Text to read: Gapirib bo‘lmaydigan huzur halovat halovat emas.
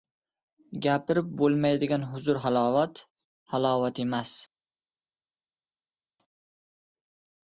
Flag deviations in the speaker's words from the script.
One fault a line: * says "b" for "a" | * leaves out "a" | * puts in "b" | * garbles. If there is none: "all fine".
all fine